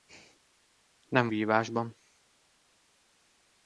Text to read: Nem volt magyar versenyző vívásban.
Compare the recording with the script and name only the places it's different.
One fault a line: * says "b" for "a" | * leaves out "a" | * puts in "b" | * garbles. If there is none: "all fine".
* leaves out "volt magyar versenyző"